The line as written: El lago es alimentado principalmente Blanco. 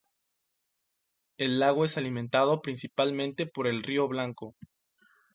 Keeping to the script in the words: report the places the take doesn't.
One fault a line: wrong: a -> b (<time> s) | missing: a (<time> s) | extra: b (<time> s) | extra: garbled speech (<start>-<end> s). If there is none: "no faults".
extra: por el río (3.5 s)